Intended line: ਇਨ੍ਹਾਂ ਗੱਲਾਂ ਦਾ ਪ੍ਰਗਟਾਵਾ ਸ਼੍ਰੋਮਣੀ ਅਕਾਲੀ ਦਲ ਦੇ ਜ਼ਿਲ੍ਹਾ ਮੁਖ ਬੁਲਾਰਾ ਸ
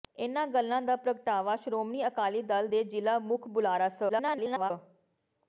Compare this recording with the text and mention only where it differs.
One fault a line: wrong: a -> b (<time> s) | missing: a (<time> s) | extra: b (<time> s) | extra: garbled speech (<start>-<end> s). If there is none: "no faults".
extra: garbled speech (4.1-4.7 s)